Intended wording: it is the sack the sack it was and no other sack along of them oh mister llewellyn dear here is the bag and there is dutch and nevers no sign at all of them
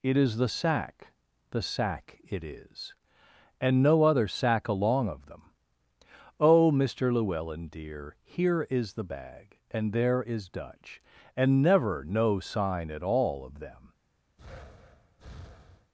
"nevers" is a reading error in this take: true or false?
true